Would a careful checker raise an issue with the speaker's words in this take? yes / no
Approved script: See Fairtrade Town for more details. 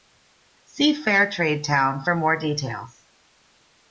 no